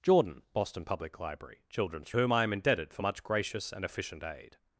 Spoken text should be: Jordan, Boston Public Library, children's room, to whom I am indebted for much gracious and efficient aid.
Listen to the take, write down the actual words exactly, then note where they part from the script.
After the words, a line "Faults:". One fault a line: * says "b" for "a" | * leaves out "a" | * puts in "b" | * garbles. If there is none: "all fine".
Jordan, Boston Public Library, children's whom I am indebted for much gracious and efficient aid.
Faults:
* leaves out "room to"